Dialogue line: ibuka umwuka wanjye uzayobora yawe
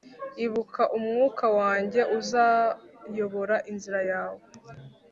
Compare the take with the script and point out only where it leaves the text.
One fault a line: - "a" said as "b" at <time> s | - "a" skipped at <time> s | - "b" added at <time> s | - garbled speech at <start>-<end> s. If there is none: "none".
- "inzira" added at 3.7 s